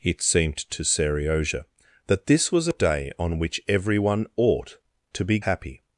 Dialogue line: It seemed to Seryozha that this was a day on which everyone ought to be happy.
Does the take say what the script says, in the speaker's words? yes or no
yes